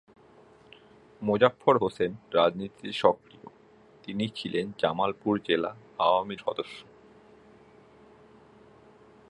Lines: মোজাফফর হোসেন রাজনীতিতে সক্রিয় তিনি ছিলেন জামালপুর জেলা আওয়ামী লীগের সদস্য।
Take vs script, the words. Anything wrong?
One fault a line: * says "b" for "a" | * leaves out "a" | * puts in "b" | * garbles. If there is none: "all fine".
* leaves out "লীগের"